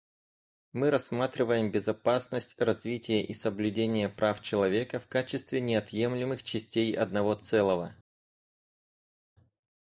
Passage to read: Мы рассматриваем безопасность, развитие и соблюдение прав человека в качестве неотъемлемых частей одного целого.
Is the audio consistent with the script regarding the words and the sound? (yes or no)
yes